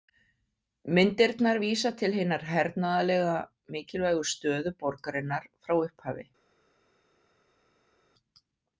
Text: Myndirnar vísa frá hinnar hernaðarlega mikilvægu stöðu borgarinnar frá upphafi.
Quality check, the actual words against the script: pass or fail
fail